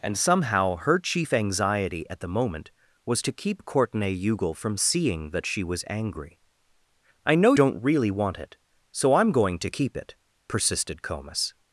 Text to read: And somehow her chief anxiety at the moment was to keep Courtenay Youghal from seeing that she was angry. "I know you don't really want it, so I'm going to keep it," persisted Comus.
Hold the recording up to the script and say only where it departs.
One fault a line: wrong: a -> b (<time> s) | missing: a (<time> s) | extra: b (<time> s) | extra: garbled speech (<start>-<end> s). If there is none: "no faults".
missing: you (7.5 s)